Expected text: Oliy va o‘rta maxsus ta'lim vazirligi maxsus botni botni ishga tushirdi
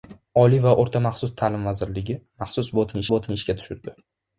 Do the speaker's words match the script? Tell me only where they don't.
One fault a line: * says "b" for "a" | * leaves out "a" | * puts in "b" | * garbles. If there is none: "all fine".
all fine